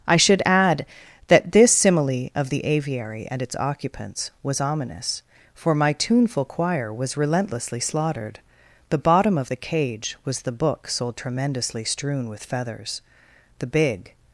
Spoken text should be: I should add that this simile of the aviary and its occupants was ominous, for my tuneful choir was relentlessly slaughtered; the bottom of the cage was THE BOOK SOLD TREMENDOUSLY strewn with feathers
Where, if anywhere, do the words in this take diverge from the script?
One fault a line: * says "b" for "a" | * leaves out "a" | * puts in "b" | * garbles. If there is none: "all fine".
* puts in "The big"